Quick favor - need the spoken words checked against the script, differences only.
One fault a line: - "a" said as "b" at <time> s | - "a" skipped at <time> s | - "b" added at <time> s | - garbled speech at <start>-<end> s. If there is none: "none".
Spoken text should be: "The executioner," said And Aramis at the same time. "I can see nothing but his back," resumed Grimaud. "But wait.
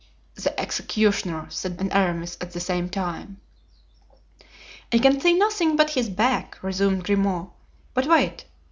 none